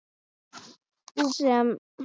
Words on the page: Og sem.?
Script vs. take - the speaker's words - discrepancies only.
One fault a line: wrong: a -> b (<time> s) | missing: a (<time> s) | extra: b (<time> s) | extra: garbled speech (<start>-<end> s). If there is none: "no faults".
no faults